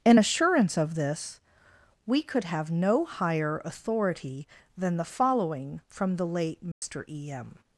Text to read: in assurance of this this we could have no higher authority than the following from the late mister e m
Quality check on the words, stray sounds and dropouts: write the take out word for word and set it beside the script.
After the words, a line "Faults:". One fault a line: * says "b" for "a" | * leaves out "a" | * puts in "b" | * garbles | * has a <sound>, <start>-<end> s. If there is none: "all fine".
in assurance of this we could have no higher authority than the following from the late mister e m
Faults:
* leaves out "this"
* has a dropout, 6.7-6.8 s